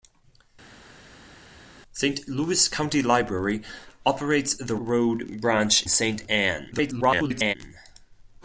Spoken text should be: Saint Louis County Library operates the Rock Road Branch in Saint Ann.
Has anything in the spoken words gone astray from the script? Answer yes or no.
yes